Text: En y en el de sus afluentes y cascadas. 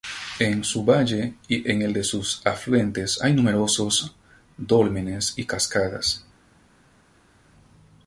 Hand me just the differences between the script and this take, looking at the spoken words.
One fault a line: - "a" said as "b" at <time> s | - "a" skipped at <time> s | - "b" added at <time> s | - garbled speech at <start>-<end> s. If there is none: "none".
- "su valle" added at 0.6 s
- "hay numerosos dólmenes" added at 3.2 s